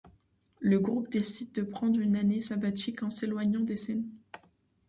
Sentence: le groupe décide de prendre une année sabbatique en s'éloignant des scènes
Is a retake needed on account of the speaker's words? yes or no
no